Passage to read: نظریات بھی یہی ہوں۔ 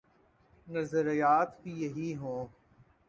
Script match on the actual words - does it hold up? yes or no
yes